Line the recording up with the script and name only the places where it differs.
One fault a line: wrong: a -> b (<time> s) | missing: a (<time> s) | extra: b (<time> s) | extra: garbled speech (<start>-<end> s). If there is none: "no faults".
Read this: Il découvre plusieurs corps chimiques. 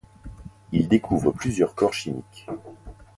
no faults